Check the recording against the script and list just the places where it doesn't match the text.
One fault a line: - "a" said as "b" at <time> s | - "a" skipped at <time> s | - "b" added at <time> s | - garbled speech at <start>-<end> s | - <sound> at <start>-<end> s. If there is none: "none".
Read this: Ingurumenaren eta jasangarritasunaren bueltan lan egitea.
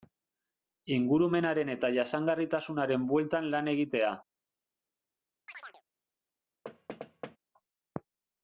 - chirp at 5.5-5.8 s
- thud at 6.6-7.4 s